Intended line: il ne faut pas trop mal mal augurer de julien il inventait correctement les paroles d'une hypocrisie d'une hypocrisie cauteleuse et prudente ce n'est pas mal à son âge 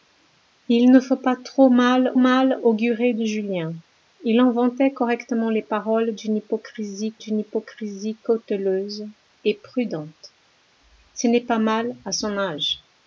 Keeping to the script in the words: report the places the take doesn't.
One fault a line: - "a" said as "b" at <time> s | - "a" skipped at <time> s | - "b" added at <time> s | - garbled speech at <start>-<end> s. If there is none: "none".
none